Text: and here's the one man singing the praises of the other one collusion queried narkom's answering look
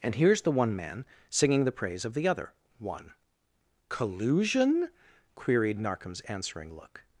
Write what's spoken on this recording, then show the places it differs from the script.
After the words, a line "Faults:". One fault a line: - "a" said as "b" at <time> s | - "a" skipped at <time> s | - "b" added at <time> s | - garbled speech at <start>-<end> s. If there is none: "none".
and here's the one man singing the praise of the other one collusion queried narkom's answering look
Faults:
- "praises" said as "praise" at 1.7 s